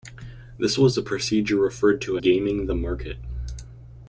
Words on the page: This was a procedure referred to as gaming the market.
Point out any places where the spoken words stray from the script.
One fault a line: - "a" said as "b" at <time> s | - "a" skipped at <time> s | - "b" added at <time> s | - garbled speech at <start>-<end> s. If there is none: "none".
- "as" skipped at 2.2 s